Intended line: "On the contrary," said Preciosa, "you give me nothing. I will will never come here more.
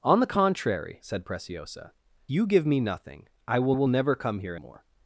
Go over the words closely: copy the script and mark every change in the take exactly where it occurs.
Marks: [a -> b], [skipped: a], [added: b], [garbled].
"On the contrary," said Preciosa, "you give me nothing. I will will never come here more.